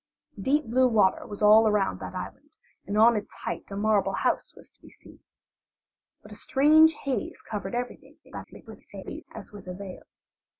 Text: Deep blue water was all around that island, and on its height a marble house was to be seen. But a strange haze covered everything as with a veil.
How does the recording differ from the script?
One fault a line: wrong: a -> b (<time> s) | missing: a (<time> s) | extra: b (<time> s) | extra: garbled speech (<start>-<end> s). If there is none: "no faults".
extra: garbled speech (8.2-9.2 s)